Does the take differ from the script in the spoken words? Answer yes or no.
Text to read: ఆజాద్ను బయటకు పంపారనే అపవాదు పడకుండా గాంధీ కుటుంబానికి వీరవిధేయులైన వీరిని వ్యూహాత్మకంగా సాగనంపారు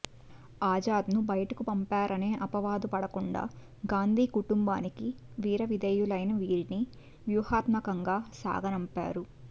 no